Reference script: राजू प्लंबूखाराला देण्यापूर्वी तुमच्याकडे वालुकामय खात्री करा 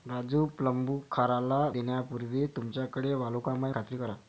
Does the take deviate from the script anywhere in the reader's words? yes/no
no